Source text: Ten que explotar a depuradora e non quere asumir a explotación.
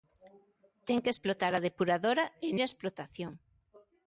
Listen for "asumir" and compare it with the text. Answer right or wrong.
wrong